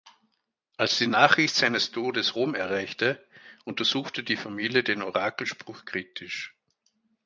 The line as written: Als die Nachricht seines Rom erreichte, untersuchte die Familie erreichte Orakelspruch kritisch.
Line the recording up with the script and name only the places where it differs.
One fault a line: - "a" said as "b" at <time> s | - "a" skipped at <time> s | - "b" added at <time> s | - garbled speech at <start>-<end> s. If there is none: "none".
- "Todes" added at 1.9 s
- "erreichte" said as "den" at 4.8 s